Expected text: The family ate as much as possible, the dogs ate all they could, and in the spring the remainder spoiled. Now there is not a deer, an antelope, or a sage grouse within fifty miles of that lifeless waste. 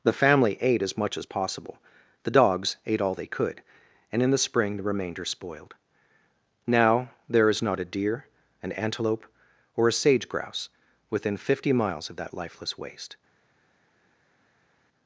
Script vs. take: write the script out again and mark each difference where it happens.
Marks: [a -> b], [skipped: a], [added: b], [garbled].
The family ate as much as possible, the dogs ate all they could, and in the spring the remainder spoiled. Now there is not a deer, an antelope, or a sage grouse within fifty miles of that lifeless waste.